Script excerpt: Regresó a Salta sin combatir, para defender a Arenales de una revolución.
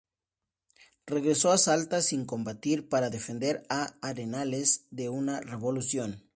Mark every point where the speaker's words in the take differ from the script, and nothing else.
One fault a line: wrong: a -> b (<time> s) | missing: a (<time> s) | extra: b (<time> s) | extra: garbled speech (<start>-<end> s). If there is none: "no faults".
no faults